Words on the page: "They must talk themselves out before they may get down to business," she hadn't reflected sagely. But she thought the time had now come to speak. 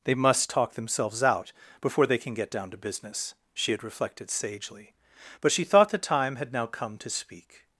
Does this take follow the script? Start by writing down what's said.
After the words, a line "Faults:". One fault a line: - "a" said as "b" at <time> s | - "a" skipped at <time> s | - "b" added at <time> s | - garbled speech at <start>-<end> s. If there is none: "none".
"They must talk themselves out before they can get down to business," she had reflected sagely. But she thought the time had now come to speak.
Faults:
- "may" said as "can" at 2.2 s
- "hadn't" said as "had" at 3.7 s